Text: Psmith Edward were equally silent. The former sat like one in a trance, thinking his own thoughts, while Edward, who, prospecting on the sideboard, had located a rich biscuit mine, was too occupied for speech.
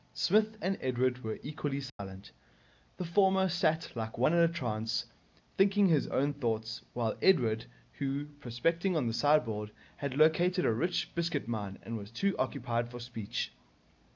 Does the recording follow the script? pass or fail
fail